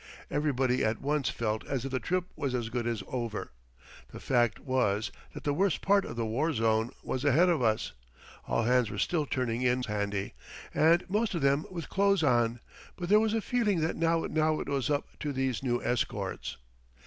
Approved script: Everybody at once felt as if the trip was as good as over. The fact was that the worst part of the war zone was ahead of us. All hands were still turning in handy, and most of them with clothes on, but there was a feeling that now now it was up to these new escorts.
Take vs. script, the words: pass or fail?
pass